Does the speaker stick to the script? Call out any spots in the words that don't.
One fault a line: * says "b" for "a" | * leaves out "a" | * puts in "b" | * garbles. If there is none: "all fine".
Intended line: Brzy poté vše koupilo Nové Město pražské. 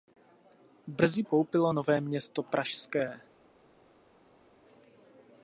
* leaves out "poté vše"